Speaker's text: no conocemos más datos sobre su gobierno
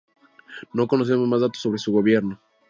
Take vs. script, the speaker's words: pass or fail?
pass